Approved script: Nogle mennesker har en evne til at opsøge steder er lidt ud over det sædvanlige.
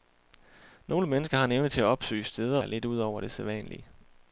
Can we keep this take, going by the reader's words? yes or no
yes